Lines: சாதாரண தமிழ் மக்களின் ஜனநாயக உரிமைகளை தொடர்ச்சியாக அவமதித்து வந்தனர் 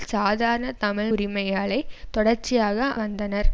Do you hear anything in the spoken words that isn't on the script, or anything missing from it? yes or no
yes